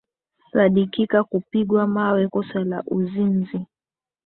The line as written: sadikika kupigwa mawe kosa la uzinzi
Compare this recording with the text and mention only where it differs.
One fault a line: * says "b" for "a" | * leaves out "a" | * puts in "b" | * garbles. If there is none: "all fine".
all fine